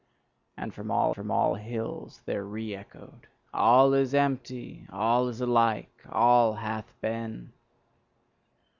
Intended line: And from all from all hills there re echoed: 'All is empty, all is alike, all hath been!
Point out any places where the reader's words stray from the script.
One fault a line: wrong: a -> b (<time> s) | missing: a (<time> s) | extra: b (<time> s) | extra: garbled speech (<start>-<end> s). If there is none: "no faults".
no faults